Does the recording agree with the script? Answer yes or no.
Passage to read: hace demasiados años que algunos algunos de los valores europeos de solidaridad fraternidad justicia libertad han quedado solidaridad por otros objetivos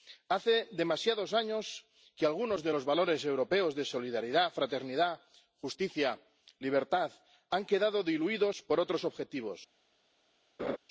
no